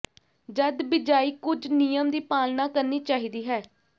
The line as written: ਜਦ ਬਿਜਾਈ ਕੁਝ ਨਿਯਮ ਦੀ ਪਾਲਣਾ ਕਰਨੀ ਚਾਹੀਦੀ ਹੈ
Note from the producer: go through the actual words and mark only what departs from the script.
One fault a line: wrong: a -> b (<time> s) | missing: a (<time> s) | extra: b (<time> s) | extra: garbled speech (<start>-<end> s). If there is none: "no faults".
no faults